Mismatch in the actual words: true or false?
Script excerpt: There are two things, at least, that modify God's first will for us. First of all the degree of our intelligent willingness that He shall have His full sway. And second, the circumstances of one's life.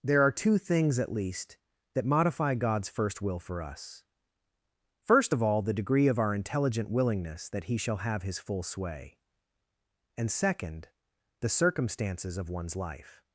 false